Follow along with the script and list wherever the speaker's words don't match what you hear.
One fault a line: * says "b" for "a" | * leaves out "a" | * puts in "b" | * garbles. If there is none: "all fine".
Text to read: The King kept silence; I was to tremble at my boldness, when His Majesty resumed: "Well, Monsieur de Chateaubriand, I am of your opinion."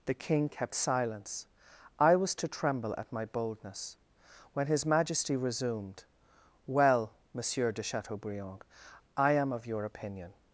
all fine